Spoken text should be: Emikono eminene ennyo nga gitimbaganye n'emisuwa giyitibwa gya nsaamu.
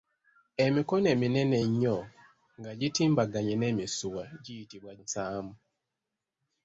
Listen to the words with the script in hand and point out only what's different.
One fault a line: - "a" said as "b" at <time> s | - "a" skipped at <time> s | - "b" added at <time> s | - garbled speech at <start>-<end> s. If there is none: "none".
- "gya" skipped at 4.9 s